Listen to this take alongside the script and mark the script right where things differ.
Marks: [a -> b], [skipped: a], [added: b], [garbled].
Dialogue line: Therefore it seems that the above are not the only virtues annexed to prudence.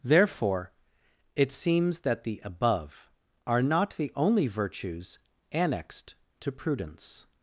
Therefore it seems that the above are not the only virtues annexed to prudence.